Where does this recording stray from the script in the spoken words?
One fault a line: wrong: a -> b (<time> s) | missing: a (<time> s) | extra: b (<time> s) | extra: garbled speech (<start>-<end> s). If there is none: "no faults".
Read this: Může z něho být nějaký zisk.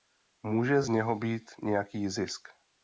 no faults